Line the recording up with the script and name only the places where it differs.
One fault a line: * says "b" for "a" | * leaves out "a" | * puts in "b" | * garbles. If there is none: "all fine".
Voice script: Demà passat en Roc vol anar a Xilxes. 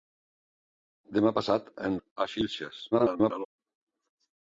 * leaves out "Roc vol anar"
* garbles